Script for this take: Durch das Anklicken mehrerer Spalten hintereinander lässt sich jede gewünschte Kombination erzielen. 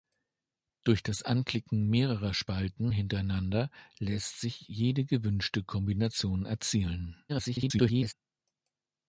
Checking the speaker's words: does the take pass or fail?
fail